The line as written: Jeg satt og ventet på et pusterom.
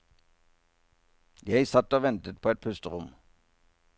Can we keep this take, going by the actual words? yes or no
yes